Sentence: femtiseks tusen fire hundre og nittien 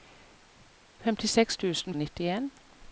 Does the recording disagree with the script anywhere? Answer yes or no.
yes